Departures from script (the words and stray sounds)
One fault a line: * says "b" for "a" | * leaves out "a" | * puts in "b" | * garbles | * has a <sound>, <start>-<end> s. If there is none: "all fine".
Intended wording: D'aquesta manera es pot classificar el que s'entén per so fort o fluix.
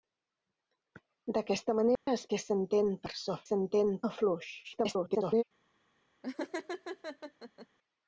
* has a dropout, 2.0-2.1 s
* leaves out "pot classificar el"
* says "s'entén" for "fort"
* garbles
* has a laugh, 6.2-7.7 s